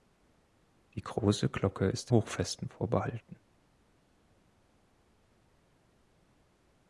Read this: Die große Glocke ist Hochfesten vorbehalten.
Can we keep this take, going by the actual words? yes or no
yes